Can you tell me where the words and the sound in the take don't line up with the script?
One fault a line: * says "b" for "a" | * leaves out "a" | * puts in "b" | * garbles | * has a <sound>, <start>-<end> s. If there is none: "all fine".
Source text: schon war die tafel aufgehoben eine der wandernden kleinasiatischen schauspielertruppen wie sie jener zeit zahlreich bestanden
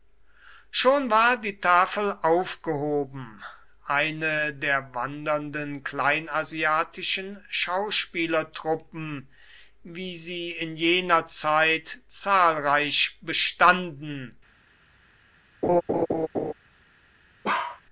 * puts in "in"
* has a laugh, 15.6-16.5 s
* has a bark, 17.4-17.8 s